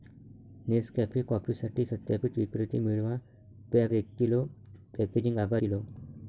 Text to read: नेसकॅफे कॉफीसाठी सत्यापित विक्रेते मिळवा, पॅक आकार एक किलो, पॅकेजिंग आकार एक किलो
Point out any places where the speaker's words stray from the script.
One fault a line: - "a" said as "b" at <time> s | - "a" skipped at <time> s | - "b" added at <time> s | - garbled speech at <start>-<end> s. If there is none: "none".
- "आकार" skipped at 3.9 s
- "एक" skipped at 5.6 s